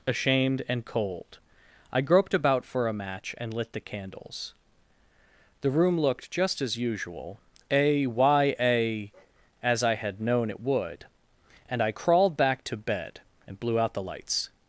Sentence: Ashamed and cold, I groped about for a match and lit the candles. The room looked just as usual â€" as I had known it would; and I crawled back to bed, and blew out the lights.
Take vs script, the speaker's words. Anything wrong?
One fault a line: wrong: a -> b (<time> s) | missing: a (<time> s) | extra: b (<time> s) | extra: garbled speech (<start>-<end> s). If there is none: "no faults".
wrong: â -> a y a (7.7 s)